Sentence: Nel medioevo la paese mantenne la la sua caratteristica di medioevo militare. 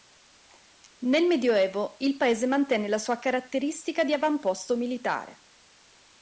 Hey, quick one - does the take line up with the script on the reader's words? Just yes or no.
no